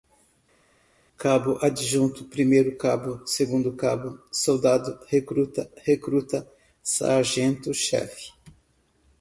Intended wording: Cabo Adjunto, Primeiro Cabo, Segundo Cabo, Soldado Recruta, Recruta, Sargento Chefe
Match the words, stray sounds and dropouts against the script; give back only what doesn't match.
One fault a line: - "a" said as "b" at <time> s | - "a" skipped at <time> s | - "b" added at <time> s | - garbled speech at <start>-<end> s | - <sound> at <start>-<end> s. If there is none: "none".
none